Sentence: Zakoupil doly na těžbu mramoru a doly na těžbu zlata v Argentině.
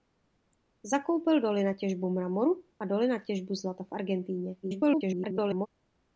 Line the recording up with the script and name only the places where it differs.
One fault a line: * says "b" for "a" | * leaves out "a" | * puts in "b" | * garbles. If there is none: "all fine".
* garbles